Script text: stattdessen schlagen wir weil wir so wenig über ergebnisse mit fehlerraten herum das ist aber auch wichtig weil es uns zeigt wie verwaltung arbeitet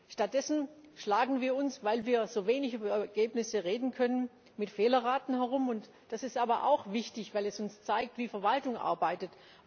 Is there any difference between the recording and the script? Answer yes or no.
yes